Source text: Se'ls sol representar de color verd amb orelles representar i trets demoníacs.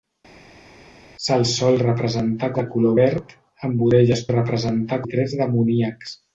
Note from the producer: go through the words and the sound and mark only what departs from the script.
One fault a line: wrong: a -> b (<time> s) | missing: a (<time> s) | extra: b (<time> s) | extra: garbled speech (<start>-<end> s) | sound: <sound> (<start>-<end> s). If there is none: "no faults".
no faults